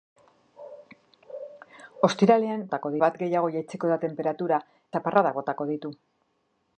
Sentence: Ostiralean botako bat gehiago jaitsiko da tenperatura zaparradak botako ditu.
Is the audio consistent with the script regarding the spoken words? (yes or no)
yes